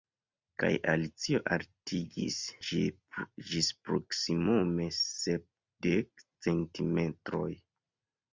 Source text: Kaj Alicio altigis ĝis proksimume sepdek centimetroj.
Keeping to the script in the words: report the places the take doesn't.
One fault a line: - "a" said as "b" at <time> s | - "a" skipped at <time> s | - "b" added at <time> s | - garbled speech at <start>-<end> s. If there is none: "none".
none